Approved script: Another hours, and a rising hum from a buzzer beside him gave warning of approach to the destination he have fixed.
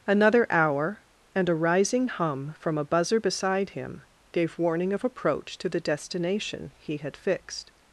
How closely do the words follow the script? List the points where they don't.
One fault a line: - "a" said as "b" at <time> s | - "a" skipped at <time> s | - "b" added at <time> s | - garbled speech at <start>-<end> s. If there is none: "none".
- "hours" said as "hour" at 0.5 s
- "have" said as "had" at 7.0 s